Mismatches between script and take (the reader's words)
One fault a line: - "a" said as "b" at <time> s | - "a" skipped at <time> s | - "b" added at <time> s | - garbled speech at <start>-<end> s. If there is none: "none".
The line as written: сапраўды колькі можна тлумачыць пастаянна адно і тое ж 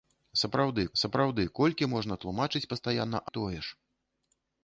- "сапраўды" added at 1.0 s
- "адно" skipped at 3.2 s